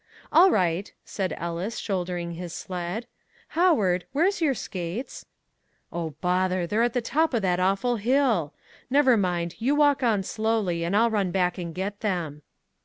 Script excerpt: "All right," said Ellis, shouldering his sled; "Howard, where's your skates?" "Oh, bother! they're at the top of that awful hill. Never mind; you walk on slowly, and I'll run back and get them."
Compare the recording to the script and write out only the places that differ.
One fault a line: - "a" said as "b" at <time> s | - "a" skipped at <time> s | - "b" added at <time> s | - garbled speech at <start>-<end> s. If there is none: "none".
none